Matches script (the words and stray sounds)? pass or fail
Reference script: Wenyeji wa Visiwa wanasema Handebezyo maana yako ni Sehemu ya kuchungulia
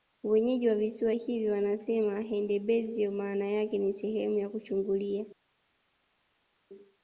fail